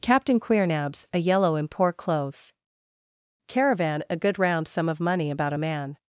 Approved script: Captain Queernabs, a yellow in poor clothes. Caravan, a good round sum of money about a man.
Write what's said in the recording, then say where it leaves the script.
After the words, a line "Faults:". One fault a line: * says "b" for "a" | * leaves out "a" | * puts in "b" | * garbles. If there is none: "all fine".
Captain Queernabs, a yellow in poor clothes. Caravan, a good round sum of money about a man.
Faults:
all fine